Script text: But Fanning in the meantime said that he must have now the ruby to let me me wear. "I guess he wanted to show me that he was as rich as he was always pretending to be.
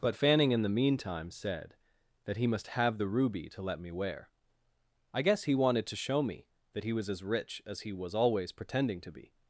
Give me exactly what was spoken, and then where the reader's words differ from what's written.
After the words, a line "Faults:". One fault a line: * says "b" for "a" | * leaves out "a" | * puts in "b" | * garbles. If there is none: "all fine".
But Fanning in the meantime said that he must have the ruby to let me wear. "I guess he wanted to show me that he was as rich as he was always pretending to be.
Faults:
* leaves out "now"
* leaves out "me"